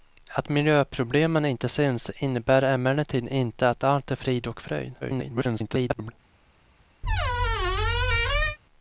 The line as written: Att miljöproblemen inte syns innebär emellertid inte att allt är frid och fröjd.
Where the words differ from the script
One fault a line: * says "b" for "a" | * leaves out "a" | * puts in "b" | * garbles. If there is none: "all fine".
* garbles